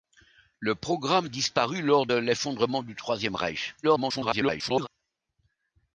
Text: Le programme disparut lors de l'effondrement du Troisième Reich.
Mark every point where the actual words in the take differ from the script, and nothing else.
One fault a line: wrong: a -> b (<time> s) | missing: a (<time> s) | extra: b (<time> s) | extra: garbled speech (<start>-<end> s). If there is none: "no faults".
missing: de (2.1 s)
extra: garbled speech (3.8-4.9 s)